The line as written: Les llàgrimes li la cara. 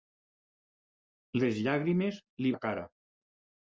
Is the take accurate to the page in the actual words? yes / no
yes